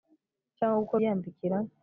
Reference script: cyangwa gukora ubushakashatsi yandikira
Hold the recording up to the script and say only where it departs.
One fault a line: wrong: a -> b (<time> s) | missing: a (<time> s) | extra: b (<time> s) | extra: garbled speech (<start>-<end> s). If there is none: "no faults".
missing: ubushakashatsi (1.0 s)